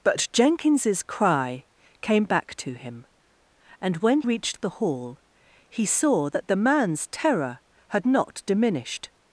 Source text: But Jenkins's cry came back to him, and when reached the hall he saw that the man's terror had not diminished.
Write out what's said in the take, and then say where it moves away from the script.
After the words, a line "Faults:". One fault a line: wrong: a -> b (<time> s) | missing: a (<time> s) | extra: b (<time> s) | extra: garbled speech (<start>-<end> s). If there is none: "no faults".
But Jenkins's cry came back to him, and when reached the hall he saw that the man's terror had not diminished.
Faults:
no faults